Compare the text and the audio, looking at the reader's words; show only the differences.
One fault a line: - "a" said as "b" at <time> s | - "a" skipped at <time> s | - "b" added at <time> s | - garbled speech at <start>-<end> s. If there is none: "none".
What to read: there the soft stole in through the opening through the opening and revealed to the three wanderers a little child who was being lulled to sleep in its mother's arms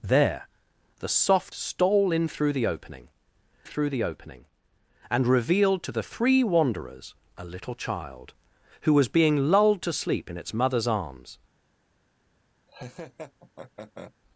none